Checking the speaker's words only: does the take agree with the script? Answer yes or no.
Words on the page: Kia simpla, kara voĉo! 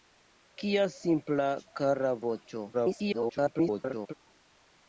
no